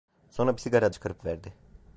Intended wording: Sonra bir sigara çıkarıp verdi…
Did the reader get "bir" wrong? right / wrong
right